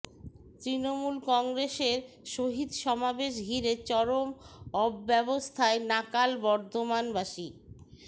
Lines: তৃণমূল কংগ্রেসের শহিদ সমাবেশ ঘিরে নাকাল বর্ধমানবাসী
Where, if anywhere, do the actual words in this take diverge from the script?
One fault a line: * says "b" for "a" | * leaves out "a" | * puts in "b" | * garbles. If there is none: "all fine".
* puts in "চরম অব্যবস্থায়"